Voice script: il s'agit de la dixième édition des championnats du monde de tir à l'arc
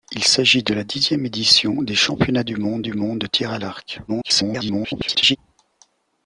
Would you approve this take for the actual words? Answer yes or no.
no